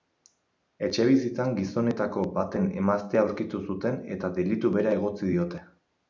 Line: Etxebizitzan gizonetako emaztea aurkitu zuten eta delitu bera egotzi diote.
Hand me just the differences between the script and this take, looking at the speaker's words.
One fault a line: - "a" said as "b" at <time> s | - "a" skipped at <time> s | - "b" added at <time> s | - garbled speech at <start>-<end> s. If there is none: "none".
- "baten" added at 2.4 s